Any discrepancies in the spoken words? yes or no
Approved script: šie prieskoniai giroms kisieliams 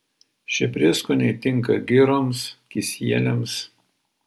yes